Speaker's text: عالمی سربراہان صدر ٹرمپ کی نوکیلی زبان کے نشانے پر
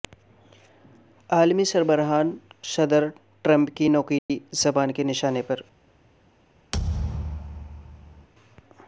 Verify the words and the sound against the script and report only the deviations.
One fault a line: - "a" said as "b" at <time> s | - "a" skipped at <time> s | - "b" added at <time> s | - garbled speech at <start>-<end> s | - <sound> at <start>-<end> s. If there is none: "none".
- dropout at 4.2-4.3 s
- thud at 6.7-8.3 s